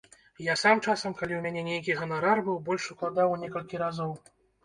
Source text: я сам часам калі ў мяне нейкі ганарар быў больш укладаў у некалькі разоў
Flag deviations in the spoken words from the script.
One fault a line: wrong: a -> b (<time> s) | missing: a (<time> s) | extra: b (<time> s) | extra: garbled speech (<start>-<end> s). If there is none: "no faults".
no faults